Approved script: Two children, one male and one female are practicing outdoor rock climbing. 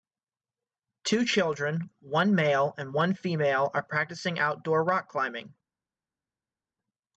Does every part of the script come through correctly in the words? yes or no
yes